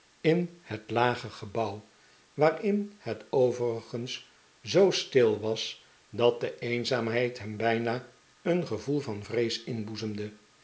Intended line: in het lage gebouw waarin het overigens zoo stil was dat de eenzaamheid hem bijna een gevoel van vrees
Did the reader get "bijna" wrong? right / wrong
right